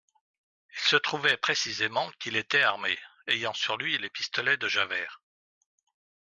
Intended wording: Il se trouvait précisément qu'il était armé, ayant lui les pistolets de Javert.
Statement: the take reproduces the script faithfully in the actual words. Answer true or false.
false